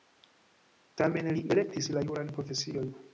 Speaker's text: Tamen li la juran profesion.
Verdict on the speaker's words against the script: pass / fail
fail